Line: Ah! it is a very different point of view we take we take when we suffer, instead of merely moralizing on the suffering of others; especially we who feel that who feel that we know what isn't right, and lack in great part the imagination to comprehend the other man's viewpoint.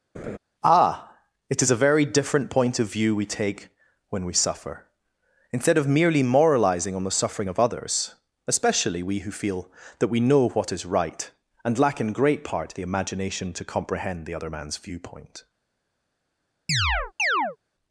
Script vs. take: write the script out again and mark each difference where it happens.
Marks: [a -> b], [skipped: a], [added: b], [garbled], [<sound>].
[laugh] Ah! it is a very different point of view we take [skipped: we take] when we suffer, instead of merely moralizing on the suffering of others; especially we who feel that [skipped: who feel that] we know what [isn't -> is] right, and lack in great part the imagination to comprehend the other man's viewpoint. [chirp]